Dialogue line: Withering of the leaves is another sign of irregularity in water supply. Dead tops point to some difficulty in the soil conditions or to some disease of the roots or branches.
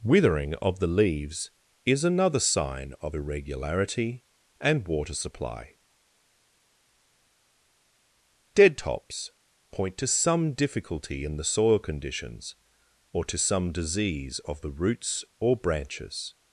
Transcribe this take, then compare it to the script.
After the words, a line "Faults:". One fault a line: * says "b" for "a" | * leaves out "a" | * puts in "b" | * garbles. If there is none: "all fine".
Withering of the leaves is another sign of irregularity and water supply. Dead tops point to some difficulty in the soil conditions or to some disease of the roots or branches.
Faults:
* says "and" for "in"